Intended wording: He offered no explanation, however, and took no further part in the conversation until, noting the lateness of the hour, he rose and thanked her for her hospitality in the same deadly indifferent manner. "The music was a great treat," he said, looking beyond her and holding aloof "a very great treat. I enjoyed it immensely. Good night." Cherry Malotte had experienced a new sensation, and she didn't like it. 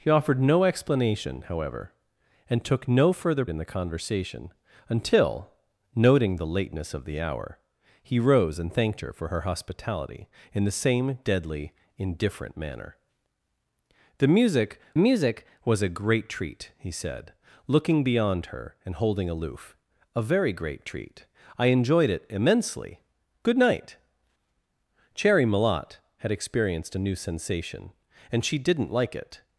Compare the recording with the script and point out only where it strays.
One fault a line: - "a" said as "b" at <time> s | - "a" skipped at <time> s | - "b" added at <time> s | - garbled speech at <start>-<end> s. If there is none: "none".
- "part" skipped at 3.5 s
- "music" added at 15.0 s